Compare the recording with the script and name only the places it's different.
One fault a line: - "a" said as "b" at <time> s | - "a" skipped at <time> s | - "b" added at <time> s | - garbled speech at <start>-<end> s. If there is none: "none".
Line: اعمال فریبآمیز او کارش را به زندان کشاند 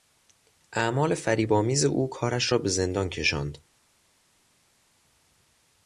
none